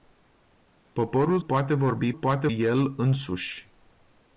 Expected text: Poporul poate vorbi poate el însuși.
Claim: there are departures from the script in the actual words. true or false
false